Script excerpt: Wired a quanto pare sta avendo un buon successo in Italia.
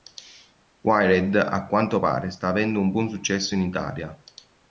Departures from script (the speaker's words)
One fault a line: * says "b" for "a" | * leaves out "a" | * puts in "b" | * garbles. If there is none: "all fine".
all fine